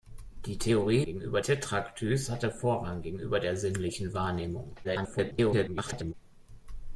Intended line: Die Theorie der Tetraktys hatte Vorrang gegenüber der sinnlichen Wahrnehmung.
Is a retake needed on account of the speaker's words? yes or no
yes